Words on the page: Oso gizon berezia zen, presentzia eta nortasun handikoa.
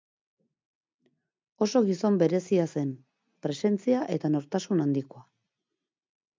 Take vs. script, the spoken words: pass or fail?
pass